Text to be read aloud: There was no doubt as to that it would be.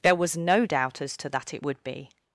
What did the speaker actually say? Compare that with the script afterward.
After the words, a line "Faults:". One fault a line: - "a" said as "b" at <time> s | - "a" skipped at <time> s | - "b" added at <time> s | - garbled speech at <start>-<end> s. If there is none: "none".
There was no doubt as to that it would be.
Faults:
none